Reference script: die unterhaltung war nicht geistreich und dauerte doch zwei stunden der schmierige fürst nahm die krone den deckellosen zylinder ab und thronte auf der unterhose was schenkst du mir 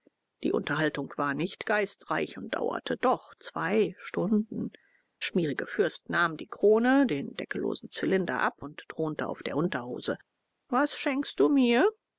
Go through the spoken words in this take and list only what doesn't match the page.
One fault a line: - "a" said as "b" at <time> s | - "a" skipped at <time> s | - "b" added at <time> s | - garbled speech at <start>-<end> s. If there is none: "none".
- "der" skipped at 4.7 s